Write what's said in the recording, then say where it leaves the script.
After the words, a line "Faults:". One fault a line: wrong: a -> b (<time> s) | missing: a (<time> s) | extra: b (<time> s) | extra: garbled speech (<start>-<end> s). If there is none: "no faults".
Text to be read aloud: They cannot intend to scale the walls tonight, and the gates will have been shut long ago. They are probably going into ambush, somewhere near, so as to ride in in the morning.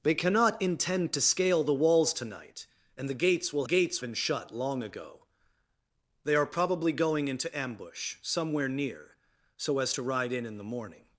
They cannot intend to scale the walls tonight, and the gates will gates been shut long ago. They are probably going into ambush, somewhere near, so as to ride in in the morning.
Faults:
wrong: have -> gates (3.6 s)